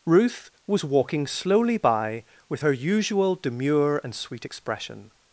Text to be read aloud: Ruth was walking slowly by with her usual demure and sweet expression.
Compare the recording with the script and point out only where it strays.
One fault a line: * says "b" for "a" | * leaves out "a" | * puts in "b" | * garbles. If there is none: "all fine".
all fine